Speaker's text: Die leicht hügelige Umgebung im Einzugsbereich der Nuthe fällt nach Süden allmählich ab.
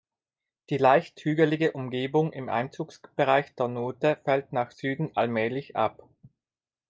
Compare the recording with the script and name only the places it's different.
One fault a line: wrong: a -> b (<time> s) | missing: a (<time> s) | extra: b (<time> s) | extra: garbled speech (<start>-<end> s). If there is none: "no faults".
no faults